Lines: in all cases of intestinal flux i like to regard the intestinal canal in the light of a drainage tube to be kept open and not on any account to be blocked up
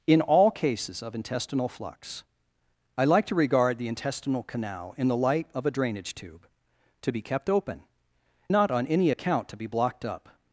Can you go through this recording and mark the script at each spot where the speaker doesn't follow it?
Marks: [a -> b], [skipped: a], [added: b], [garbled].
in all cases of intestinal flux i like to regard the intestinal canal in the light of a drainage tube to be kept open [skipped: and] not on any account to be blocked up